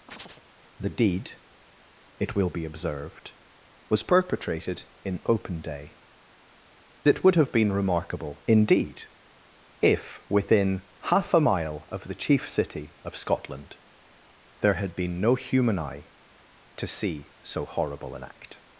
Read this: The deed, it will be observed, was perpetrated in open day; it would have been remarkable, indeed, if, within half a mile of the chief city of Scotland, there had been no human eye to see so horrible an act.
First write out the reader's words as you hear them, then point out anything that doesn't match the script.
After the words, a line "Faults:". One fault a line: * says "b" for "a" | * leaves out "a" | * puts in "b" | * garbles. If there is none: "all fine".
The deed, it will be observed, was perpetrated in open day; it would have been remarkable, indeed, if, within half a mile of the chief city of Scotland, there had been no human eye to see so horrible an act.
Faults:
all fine